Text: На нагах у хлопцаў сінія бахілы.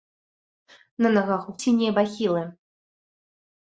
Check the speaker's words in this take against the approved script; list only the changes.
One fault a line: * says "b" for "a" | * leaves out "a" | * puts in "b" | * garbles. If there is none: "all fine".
* leaves out "хлопцаў"